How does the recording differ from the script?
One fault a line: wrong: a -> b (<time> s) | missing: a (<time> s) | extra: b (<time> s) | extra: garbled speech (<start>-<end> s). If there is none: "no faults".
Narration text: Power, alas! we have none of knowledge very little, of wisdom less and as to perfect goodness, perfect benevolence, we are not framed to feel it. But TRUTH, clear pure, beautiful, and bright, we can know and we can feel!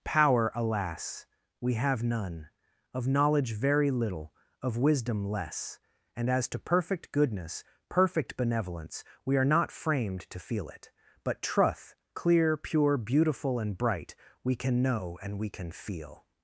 no faults